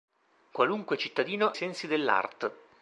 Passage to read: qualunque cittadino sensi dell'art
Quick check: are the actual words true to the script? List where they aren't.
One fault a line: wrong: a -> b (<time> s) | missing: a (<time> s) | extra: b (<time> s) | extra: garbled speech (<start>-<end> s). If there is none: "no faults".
no faults